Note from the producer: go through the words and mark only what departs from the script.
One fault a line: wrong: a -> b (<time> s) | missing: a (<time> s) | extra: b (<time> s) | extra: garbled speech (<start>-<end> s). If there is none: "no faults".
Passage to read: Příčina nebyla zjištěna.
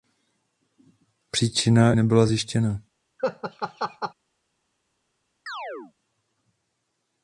no faults